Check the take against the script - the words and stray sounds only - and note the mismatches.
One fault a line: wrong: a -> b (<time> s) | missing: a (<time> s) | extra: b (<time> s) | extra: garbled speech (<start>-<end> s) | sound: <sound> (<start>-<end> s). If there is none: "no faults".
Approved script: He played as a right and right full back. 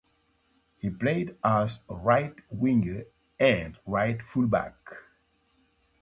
extra: winger (2.5 s)